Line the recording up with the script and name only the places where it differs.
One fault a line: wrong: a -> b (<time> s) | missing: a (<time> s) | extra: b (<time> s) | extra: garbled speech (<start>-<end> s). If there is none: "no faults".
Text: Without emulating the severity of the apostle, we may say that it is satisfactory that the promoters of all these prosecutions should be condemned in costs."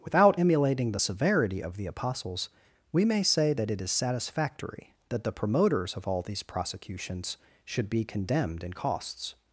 wrong: apostle -> apostles (1.9 s)